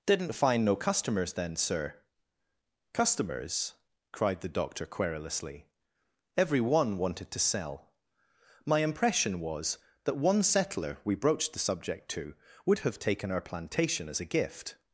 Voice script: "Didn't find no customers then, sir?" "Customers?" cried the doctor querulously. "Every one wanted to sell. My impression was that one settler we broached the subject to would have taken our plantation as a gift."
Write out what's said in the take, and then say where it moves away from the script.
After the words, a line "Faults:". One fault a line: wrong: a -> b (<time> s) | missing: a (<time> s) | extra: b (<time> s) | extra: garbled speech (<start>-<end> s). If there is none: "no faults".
"Didn't find no customers then, sir?" "Customers?" cried the doctor querulously. "Every one wanted to sell. My impression was that one settler we broached the subject to would have taken our plantation as a gift."
Faults:
no faults